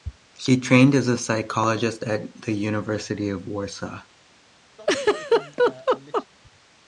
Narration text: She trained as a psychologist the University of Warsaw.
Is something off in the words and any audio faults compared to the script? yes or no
yes